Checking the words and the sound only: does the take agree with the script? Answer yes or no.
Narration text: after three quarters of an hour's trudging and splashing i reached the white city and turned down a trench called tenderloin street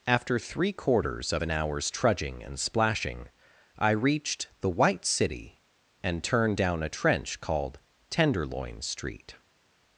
yes